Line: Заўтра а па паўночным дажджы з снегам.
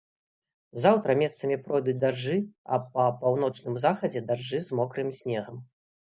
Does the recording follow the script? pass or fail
fail